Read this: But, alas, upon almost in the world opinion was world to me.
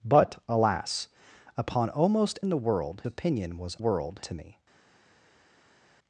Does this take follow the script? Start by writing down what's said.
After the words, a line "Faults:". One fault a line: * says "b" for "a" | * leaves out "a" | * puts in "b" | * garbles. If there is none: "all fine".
But, alas, upon almost in the world opinion was world to me.
Faults:
all fine